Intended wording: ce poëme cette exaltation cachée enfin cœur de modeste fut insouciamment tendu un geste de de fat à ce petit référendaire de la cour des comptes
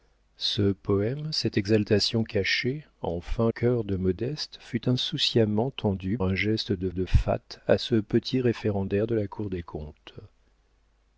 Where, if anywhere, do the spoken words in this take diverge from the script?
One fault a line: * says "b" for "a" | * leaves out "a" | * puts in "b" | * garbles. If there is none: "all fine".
all fine